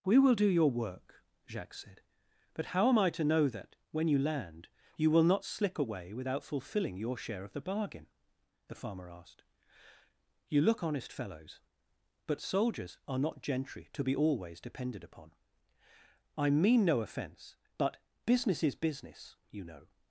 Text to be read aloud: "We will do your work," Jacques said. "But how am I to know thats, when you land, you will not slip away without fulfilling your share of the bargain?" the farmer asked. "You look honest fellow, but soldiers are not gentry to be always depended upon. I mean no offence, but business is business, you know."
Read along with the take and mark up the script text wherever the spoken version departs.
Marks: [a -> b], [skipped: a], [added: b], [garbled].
"We will do your work," Jacques said. "But how am I to know [thats, -> that] when you land, you will not slip away without fulfilling your share of the bargain?" the farmer asked. "You look honest [fellow, -> fellows] but soldiers are not gentry to be always depended upon. I mean no offence, but business is business, you know."